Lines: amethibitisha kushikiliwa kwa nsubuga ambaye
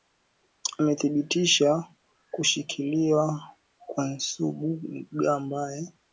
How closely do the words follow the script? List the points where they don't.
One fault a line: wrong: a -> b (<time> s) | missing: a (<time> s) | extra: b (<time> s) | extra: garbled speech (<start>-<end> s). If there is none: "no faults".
no faults